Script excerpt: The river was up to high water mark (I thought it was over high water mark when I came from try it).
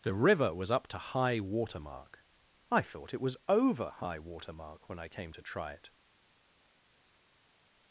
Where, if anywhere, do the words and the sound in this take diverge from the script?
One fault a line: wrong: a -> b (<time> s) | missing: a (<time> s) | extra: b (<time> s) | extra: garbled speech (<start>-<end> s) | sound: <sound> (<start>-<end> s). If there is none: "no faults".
wrong: from -> to (5.3 s)